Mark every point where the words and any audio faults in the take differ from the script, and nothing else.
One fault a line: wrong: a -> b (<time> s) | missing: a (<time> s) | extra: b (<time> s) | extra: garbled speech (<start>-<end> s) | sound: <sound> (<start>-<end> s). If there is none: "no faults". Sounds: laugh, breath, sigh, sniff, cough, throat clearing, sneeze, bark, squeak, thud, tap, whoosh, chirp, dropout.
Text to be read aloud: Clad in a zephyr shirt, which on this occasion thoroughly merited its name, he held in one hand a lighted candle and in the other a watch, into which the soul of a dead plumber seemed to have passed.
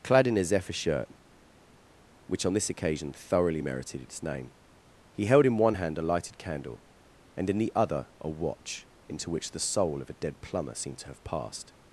no faults